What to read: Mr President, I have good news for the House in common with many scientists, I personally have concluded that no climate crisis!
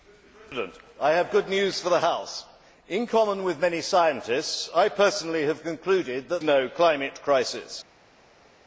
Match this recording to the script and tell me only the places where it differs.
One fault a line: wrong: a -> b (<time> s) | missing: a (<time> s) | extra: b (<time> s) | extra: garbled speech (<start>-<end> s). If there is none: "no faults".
no faults